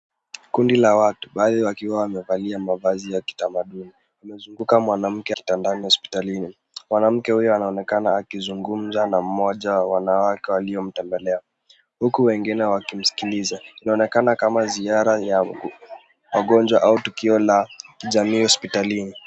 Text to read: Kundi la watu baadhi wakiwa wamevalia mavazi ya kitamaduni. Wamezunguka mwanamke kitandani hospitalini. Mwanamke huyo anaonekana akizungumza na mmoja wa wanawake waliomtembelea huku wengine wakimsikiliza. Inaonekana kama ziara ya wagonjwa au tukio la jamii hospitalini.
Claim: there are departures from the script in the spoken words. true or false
false